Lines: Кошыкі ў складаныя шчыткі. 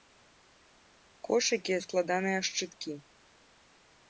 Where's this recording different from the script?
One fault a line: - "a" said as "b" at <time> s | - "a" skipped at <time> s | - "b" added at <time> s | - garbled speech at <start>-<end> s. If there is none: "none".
none